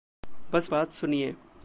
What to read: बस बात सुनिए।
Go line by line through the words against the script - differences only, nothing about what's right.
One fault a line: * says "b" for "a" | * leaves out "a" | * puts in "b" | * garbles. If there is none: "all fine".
all fine